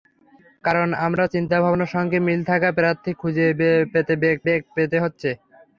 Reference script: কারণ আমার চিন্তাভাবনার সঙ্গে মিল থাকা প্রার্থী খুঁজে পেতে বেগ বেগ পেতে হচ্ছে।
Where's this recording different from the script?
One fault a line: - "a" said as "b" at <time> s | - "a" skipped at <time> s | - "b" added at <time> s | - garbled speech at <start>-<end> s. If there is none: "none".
none